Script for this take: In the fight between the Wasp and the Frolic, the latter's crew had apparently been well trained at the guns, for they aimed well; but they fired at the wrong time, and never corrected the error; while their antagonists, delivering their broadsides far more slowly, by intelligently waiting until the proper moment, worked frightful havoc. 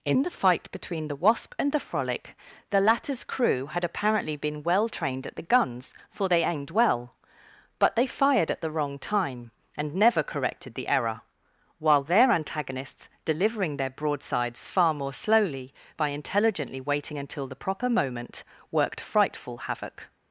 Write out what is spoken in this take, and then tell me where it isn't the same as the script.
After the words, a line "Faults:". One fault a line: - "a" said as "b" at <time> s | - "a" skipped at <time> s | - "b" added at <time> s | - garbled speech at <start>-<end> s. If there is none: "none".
In the fight between the Wasp and the Frolic, the latter's crew had apparently been well trained at the guns, for they aimed well; but they fired at the wrong time, and never corrected the error; while their antagonists, delivering their broadsides far more slowly, by intelligently waiting until the proper moment, worked frightful havoc.
Faults:
none